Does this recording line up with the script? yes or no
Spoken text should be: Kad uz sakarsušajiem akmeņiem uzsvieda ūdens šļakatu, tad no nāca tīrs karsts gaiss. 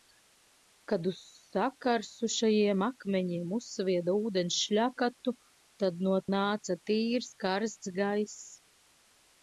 yes